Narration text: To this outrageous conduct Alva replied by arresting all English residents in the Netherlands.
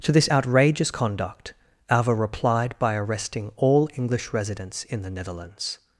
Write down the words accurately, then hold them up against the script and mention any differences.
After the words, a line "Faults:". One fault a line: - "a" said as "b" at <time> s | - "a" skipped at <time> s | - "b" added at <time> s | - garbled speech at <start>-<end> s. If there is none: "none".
To this outrageous conduct Alva replied by arresting all English residents in the Netherlands.
Faults:
none